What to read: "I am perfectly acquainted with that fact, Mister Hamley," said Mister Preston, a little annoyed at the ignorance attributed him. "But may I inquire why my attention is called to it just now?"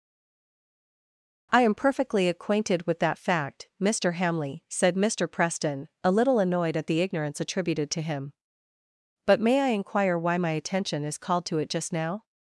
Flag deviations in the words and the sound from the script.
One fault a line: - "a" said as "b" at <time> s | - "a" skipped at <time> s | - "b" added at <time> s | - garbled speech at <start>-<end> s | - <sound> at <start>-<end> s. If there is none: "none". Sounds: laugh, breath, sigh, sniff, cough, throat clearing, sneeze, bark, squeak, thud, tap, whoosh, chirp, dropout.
- "to" added at 7.9 s